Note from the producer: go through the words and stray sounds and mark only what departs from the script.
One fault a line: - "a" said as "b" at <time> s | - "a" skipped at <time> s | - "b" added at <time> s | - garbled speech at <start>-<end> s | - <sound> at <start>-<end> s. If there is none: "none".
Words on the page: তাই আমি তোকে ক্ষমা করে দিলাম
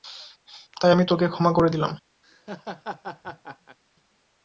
- laugh at 2.2-3.8 s